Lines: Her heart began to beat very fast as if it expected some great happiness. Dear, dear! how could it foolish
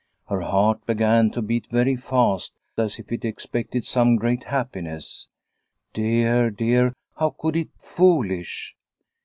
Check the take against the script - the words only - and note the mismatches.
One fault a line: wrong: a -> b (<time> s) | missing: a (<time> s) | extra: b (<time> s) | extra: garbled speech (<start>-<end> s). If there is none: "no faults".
no faults